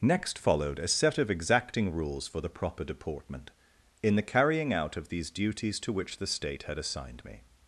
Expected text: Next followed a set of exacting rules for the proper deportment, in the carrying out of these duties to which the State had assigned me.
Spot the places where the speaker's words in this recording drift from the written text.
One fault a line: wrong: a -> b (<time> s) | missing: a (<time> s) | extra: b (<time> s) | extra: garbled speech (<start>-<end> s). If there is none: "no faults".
no faults